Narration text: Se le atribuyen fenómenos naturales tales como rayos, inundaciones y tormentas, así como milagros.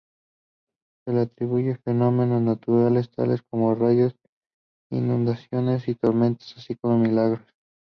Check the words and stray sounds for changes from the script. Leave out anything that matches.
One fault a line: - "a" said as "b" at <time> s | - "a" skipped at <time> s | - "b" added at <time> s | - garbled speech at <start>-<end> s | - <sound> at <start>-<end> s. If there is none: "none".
none